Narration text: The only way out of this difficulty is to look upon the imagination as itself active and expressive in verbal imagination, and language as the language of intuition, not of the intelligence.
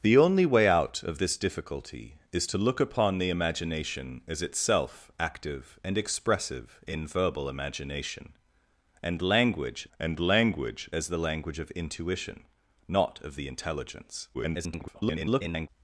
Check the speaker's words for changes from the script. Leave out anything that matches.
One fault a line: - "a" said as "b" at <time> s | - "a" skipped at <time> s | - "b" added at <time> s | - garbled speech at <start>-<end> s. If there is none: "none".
- "and language" added at 10.0 s
- garbled speech at 14.3-15.7 s